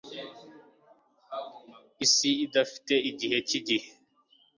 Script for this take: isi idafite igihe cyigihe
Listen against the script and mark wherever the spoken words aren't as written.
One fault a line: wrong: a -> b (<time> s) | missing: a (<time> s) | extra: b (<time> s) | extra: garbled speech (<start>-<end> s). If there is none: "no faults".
no faults